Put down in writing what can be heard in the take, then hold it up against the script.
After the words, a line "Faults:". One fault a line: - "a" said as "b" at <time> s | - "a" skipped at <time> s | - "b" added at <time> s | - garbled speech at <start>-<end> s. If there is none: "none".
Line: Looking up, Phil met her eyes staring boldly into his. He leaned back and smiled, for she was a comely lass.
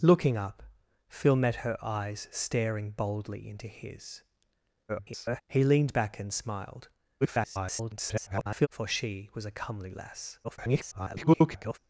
Looking up, Phil met her eyes staring boldly into his. [garbled] He leaned back and smiled, [garbled] for she was a comely lass. [garbled]
Faults:
- garbled speech at 4.9-5.4 s
- garbled speech at 7.2-8.7 s
- garbled speech at 10.4-11.8 s